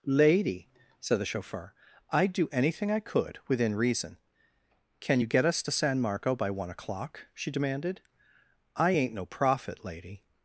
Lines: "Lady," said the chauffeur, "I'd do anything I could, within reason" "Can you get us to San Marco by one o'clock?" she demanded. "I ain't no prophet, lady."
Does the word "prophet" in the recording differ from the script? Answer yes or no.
no